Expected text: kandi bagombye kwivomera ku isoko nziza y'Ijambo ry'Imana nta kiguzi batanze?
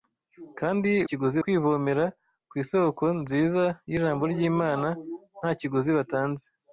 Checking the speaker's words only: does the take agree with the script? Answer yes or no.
no